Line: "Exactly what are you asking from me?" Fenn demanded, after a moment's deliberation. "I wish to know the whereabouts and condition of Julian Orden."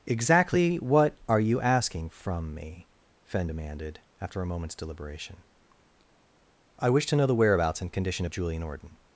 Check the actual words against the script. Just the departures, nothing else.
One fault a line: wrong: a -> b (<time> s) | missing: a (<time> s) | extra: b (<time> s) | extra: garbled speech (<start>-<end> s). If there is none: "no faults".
no faults